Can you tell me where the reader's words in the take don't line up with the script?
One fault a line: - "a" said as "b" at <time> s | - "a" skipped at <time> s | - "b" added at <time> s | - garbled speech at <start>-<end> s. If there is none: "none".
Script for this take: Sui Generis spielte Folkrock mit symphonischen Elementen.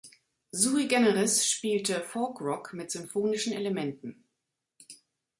none